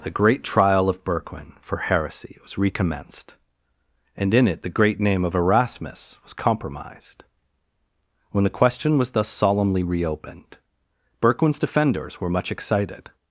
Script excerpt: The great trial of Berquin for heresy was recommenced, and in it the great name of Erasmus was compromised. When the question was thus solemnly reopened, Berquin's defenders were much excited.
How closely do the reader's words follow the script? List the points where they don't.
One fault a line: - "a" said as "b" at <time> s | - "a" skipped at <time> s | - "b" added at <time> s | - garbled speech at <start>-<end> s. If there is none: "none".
none